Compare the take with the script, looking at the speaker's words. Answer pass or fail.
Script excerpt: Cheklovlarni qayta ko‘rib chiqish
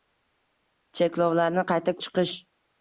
fail